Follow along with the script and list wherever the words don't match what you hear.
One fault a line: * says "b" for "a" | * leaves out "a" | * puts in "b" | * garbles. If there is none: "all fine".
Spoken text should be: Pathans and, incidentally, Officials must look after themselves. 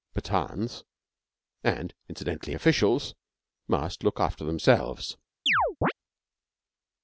all fine